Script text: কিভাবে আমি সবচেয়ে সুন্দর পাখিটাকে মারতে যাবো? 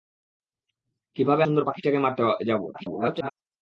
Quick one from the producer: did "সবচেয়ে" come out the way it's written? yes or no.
no